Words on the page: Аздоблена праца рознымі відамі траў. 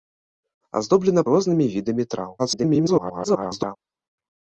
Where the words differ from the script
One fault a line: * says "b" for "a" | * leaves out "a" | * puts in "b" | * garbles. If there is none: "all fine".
* leaves out "праца"
* garbles